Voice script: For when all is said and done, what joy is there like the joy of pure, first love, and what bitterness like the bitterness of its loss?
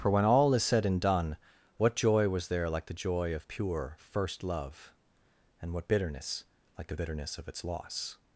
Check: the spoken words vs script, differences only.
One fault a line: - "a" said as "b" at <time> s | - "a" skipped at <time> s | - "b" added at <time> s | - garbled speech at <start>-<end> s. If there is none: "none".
- "is" said as "was" at 2.3 s